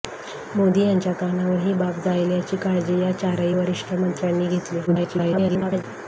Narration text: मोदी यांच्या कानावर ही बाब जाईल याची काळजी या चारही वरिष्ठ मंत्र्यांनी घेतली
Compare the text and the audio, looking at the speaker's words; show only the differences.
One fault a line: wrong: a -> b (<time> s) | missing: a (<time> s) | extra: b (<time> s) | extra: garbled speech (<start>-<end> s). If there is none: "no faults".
extra: garbled speech (4.9-5.8 s)